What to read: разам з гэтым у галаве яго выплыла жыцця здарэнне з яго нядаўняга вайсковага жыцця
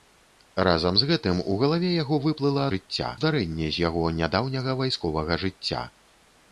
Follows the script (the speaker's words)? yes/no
yes